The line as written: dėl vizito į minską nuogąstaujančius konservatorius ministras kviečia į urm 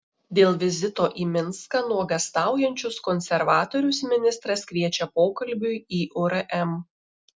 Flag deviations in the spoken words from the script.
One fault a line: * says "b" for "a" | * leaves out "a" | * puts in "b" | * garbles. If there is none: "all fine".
* puts in "pokalbiui"